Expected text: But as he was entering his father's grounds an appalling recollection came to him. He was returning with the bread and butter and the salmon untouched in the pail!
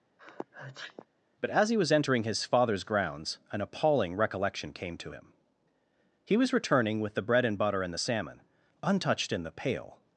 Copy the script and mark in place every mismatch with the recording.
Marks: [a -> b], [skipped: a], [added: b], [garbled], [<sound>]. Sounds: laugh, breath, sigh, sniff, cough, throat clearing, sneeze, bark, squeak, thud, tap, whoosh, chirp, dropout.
[sneeze] But as he was entering his father's grounds an appalling recollection came to him. He was returning with the bread and butter and the salmon untouched in the pail!